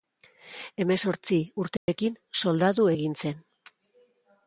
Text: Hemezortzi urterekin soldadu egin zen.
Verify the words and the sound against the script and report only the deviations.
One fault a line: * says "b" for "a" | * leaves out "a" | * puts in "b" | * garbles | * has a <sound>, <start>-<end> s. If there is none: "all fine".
* has a dropout, 1.8-1.9 s